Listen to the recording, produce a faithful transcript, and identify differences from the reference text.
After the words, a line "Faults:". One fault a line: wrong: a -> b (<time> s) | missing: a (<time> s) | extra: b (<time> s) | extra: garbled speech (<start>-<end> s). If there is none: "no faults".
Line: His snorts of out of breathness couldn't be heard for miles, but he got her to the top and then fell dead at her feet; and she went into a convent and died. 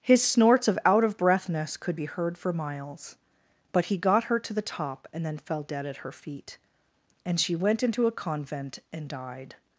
His snorts of out of breathness could be heard for miles, but he got her to the top and then fell dead at her feet; and she went into a convent and died.
Faults:
wrong: couldn't -> could (1.8 s)